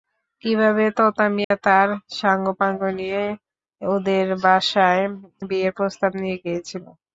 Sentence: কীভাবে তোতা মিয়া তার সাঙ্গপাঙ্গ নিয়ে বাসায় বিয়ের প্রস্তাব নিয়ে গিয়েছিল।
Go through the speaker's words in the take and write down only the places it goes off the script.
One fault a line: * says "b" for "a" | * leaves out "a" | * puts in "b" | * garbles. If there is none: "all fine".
* puts in "ওদের"